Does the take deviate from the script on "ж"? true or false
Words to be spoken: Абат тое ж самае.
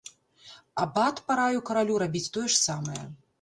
false